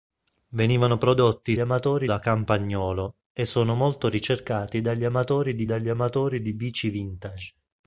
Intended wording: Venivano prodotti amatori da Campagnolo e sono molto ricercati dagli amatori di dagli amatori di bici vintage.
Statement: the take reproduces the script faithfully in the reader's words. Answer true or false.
true